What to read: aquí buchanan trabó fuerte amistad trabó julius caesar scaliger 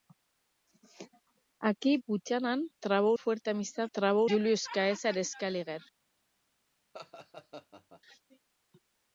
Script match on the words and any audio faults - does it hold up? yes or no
no